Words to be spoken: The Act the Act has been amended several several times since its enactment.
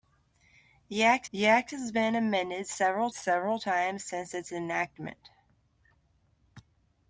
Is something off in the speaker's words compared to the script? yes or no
no